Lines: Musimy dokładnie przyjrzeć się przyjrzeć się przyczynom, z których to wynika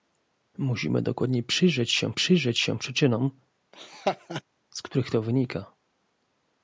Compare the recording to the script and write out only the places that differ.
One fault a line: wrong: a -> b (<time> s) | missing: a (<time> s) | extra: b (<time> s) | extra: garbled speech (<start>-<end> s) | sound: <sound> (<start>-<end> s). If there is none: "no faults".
sound: laugh (3.7-4.4 s)